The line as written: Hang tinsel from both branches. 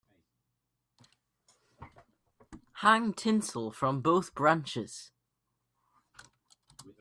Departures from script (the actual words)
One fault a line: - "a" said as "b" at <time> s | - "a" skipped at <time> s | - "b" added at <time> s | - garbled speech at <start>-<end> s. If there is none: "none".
none